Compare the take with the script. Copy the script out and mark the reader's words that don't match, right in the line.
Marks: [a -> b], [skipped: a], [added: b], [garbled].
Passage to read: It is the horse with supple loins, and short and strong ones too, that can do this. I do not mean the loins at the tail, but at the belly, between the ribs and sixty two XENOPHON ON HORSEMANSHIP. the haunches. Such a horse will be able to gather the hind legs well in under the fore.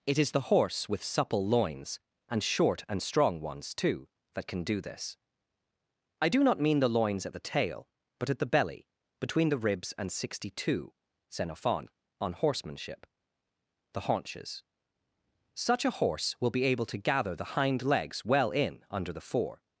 It is the horse with supple loins, and short and strong ones too, that can do this. I do not mean the loins at the tail, but at the belly, between the ribs and sixty two XENOPHON ON HORSEMANSHIP. the haunches. Such a horse will be able to gather the hind legs well in under the fore.